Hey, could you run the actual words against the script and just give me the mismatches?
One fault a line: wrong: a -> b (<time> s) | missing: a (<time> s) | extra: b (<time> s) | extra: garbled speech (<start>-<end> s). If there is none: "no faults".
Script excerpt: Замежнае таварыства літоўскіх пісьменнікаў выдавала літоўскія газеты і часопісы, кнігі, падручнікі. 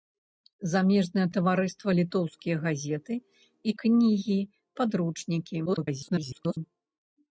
missing: літоўскіх пісьменнікаў выдавала (1.9 s)
missing: часопісы (3.7 s)
extra: garbled speech (5.7-6.6 s)